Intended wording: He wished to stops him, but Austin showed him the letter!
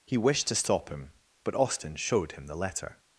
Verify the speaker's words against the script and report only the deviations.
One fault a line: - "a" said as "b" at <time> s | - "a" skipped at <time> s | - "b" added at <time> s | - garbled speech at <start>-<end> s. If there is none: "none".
- "stops" said as "stop" at 0.6 s